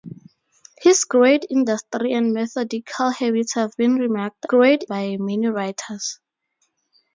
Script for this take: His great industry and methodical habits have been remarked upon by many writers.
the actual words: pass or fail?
fail